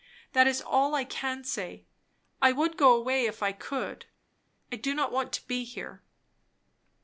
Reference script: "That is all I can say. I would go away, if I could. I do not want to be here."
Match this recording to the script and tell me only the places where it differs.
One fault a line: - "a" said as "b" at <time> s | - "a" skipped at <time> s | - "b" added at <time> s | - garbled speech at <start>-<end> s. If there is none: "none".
none